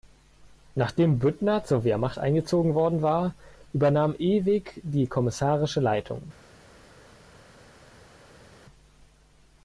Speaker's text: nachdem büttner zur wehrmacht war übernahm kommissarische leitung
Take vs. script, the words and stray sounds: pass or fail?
fail